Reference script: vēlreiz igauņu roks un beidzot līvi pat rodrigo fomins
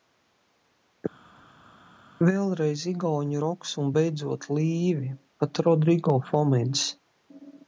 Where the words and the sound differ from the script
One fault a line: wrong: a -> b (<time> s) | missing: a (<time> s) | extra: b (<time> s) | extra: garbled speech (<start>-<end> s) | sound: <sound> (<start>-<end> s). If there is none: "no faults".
no faults